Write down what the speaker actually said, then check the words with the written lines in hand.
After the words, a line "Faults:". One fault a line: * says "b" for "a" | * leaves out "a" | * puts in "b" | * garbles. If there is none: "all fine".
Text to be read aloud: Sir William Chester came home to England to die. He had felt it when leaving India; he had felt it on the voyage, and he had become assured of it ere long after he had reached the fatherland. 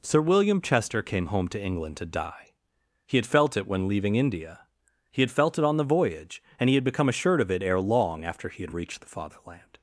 Sir William Chester came home to England to die. He had felt it when leaving India; he had felt it on the voyage, and he had become assured of it ere long after he had reached the fatherland.
Faults:
all fine